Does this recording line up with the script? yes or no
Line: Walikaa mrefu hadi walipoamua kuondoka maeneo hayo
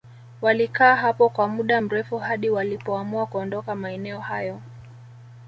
no